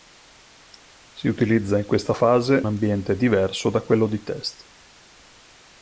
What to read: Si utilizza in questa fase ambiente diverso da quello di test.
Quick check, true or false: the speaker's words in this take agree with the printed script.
true